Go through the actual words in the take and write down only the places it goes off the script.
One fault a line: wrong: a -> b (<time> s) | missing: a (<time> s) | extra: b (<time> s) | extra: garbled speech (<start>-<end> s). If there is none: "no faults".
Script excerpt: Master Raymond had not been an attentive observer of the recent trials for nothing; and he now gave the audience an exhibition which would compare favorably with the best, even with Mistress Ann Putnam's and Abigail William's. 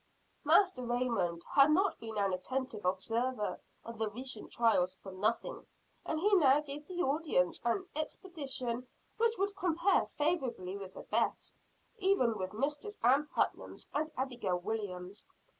no faults